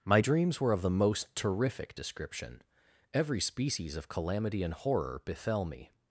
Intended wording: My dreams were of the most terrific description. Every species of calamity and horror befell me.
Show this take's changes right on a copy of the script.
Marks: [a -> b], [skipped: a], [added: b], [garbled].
My dreams were of the most terrific description. Every species of calamity and horror befell me.